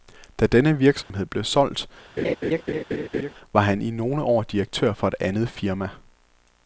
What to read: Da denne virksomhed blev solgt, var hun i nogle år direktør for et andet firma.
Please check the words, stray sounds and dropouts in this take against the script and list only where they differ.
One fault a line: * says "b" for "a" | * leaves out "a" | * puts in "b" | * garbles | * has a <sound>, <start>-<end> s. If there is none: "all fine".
* has a dropout, 1.0-1.1 s
* has a laugh, 2.2-3.3 s
* says "han" for "hun"